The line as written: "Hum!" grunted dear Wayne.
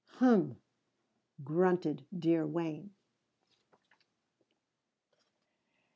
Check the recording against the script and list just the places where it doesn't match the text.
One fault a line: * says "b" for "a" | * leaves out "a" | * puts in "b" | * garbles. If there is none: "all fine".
all fine